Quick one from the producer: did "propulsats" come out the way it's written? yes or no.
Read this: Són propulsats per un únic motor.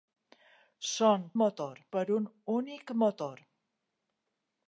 no